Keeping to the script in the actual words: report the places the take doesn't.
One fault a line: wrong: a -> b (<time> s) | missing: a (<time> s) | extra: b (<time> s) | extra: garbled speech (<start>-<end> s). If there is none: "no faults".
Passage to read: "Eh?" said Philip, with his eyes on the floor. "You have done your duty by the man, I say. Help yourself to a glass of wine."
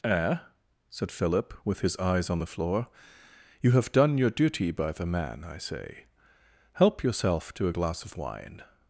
no faults